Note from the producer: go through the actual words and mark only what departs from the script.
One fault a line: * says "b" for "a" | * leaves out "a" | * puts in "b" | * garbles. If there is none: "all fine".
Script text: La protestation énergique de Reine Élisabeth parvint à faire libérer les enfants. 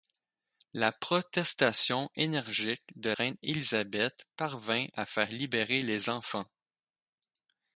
all fine